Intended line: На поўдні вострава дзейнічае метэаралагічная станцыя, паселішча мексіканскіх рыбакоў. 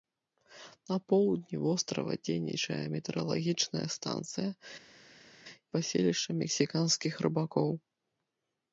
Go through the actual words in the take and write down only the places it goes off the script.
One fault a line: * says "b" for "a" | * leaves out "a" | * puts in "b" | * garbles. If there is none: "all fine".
all fine